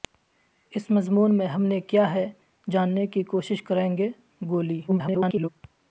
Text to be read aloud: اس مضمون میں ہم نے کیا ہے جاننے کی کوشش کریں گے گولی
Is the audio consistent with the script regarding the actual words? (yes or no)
no